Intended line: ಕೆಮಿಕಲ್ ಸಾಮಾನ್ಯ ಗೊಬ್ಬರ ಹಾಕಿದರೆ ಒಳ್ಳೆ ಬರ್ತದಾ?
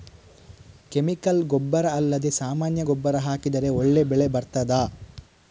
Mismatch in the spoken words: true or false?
true